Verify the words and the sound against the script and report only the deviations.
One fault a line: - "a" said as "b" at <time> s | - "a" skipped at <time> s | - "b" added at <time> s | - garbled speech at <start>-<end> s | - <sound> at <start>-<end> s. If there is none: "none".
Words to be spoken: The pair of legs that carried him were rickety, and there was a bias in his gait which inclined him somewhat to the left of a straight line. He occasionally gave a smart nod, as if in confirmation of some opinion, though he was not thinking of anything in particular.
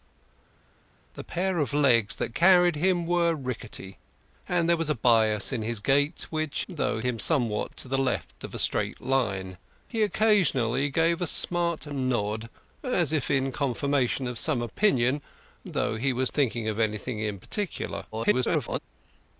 - "inclined" said as "though" at 6.7 s
- "not" skipped at 16.3 s
- garbled speech at 18.1-18.8 s